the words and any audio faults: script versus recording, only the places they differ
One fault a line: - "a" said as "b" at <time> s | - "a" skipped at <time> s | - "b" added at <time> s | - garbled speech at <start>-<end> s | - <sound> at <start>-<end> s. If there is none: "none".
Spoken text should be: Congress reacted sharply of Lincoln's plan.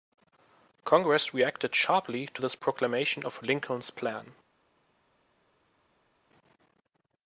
- "to this proclamation" added at 2.3 s